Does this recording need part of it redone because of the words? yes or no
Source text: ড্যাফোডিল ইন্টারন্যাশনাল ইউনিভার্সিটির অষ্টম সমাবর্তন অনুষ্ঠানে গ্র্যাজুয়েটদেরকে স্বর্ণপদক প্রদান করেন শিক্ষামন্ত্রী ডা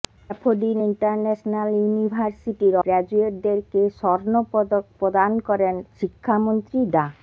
yes